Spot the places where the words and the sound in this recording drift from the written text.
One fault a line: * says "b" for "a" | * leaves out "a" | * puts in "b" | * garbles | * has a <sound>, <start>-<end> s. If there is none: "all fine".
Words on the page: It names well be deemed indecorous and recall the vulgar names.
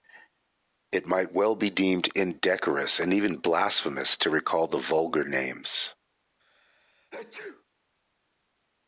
* says "might" for "names"
* puts in "even blasphemous to"
* has a sneeze, 6.4-7.6 s